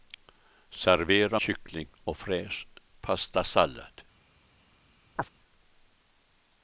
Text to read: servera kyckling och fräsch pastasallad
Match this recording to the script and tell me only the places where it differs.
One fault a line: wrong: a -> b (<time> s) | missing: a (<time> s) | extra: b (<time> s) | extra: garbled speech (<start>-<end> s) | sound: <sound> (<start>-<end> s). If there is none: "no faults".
sound: chirp (5.2-5.3 s)